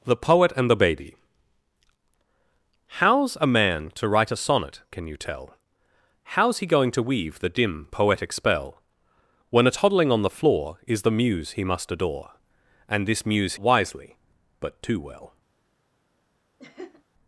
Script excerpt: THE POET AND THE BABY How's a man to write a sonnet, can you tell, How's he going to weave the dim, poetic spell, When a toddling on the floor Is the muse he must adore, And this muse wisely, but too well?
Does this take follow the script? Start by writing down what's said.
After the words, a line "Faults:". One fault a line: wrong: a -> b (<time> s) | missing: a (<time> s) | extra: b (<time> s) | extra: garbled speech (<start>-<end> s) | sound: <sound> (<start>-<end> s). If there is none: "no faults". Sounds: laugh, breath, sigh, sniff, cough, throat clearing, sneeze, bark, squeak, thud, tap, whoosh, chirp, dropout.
THE POET AND THE BABY How's a man to write a sonnet, can you tell, How's he going to weave the dim, poetic spell, When a toddling on the floor Is the muse he must adore, And this muse wisely, but too well?
Faults:
sound: laugh (16.6-17.0 s)